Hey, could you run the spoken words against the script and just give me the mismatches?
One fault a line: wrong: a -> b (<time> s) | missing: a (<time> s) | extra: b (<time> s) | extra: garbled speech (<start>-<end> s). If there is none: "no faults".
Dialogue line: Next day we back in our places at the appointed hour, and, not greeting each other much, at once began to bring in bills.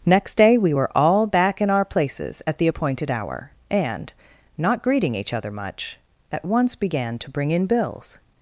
extra: were all (0.7 s)